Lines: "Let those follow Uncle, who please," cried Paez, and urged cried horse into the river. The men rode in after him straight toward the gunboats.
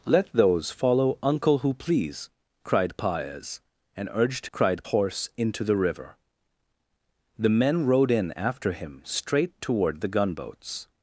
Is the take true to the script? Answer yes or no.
yes